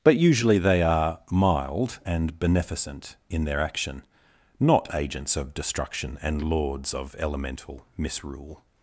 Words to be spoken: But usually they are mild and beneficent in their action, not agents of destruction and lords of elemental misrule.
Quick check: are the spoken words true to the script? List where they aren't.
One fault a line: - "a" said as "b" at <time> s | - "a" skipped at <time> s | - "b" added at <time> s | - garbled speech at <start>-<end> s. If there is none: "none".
none